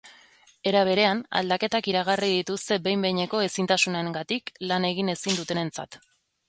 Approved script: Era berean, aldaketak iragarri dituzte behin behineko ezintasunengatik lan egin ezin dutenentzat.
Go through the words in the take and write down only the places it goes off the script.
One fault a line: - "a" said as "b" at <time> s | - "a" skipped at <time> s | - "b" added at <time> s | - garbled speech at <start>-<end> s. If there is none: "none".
none